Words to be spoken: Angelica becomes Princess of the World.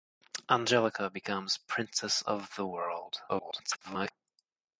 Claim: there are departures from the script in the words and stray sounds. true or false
true